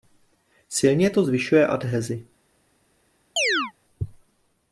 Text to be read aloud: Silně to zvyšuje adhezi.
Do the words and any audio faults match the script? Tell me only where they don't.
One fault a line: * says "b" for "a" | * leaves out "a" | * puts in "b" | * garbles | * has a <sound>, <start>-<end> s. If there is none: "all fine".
* has a chirp, 3.4-3.7 s